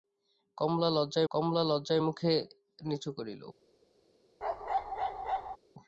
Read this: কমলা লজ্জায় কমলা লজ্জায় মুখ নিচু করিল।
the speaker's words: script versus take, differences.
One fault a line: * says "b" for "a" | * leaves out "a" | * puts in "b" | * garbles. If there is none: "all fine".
all fine